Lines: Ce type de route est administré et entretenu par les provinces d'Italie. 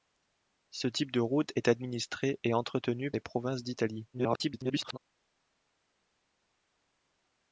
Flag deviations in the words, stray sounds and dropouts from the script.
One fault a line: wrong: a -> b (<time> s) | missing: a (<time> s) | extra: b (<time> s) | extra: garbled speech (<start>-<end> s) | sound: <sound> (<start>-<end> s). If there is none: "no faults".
missing: par (3.1 s)
extra: garbled speech (4.1-5.0 s)